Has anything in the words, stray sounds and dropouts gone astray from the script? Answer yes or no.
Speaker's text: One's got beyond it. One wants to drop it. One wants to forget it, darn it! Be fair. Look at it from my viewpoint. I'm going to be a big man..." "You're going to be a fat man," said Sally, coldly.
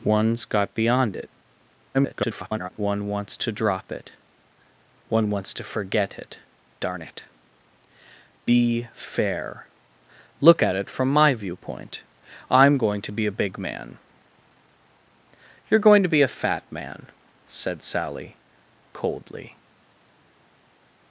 yes